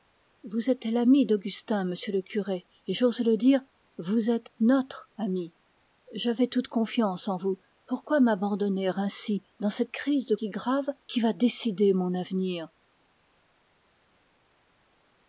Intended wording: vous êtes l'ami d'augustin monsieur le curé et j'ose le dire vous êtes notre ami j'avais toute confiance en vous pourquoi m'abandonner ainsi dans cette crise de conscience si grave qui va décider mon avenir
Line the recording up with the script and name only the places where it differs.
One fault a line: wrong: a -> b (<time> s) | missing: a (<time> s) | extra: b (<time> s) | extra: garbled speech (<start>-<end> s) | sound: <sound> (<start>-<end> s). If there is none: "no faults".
missing: conscience (10.3 s)